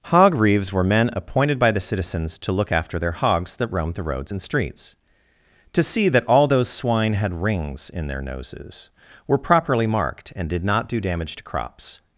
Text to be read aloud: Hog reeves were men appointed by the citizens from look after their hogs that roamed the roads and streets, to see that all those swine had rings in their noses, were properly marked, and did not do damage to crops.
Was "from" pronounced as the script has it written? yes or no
no